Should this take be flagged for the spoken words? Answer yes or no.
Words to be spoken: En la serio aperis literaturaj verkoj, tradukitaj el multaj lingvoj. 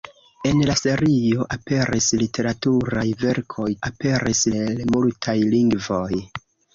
yes